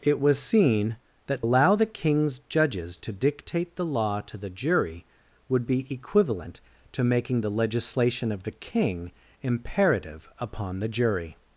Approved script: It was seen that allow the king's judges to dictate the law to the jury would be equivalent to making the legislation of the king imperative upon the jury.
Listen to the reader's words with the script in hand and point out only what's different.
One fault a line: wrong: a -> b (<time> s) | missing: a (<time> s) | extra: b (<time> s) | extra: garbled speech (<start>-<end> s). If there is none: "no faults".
no faults